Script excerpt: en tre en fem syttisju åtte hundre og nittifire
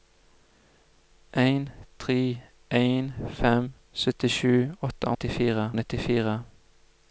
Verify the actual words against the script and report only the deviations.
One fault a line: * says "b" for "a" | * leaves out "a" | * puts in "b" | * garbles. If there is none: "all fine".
* says "nittifire" for "hundre"